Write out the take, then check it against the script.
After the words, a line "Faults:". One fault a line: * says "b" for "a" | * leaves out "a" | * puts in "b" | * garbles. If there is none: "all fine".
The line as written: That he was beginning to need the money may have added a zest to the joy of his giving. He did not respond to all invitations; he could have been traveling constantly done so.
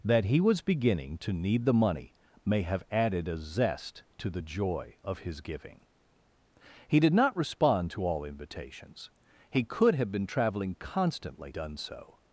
That he was beginning to need the money may have added a zest to the joy of his giving. He did not respond to all invitations; he could have been traveling constantly done so.
Faults:
all fine